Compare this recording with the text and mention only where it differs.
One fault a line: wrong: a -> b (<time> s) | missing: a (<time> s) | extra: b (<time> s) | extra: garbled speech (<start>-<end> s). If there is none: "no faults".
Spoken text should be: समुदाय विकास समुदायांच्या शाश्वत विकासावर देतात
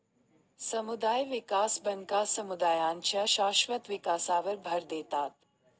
extra: बँका (1.9 s)
extra: भर (4.6 s)